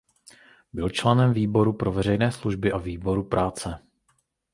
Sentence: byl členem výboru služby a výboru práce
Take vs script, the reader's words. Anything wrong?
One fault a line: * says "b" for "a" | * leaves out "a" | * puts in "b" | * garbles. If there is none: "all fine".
* puts in "pro veřejné"